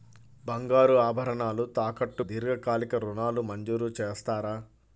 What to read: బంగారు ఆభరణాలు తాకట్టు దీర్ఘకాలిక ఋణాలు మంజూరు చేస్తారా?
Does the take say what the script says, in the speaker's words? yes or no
yes